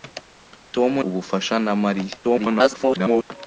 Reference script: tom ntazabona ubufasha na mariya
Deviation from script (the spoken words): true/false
true